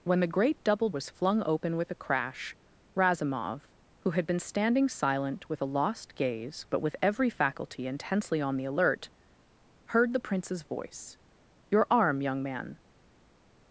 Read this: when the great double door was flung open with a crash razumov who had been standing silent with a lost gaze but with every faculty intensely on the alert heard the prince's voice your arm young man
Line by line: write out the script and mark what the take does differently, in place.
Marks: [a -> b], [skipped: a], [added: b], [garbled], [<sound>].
when the great double [skipped: door] was flung open with a crash razumov who had been standing silent with a lost gaze but with every faculty intensely on the alert heard the prince's voice your arm young man